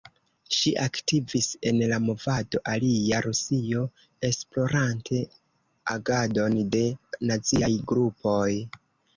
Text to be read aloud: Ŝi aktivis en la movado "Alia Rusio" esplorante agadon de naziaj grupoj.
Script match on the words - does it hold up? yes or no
yes